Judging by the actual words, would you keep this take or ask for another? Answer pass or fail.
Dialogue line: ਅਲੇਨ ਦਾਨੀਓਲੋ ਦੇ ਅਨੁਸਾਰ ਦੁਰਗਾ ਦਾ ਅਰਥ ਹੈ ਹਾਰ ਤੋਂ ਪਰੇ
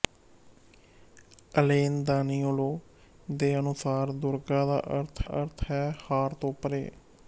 fail